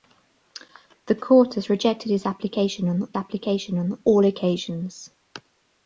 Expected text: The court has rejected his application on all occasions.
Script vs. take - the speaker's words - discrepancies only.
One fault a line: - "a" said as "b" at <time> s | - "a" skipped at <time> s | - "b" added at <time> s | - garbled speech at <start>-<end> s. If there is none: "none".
- "application on" added at 3.1 s